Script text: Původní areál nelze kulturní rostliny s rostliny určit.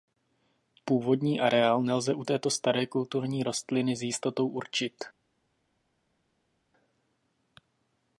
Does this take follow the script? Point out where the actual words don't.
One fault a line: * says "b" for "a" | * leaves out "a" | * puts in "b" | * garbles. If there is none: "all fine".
* puts in "u této staré"
* says "jistotou" for "rostliny"